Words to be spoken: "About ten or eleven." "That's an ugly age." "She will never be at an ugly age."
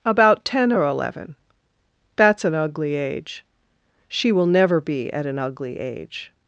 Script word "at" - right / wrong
right